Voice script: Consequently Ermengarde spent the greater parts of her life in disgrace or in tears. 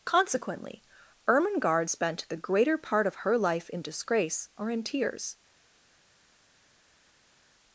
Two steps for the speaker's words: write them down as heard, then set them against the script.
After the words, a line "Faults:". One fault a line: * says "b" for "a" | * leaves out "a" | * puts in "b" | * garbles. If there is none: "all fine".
Consequently Ermengarde spent the greater part of her life in disgrace or in tears.
Faults:
* says "part" for "parts"